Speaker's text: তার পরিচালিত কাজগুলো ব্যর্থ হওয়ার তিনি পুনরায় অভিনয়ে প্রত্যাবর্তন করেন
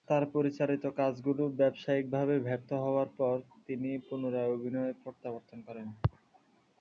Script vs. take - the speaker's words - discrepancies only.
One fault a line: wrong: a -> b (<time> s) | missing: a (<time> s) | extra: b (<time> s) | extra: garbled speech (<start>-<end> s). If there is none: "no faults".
extra: ব্যবসায়িকভাবে (1.6 s)
extra: পর (3.2 s)